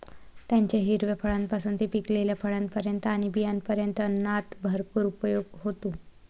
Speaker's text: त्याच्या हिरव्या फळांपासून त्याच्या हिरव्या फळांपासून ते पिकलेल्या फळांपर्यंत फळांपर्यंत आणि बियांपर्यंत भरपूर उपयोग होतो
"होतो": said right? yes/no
yes